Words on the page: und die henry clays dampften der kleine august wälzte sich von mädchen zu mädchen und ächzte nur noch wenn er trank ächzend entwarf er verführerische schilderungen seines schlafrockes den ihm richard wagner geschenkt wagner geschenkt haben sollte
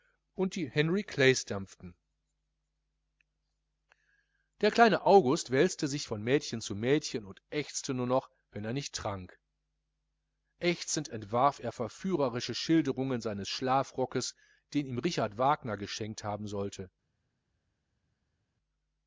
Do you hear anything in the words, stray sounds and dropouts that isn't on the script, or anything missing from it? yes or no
yes